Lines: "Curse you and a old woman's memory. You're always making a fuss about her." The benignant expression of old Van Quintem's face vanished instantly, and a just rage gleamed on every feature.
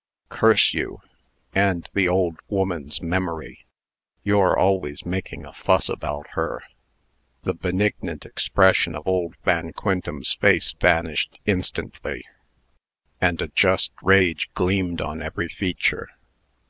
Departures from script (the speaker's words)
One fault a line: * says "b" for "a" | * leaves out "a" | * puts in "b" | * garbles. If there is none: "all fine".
* says "the" for "a"